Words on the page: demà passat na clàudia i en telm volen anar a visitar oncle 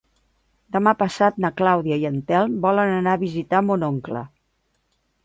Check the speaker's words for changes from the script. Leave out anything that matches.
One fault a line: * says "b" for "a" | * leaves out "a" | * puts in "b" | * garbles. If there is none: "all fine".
* puts in "mon"